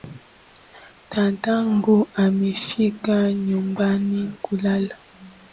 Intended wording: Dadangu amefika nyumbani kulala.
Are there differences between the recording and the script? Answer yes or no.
no